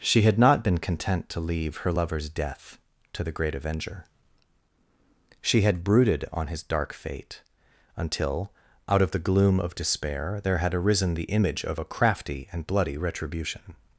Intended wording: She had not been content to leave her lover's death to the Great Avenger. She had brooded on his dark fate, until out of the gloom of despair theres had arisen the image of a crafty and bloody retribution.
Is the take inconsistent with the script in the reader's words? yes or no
yes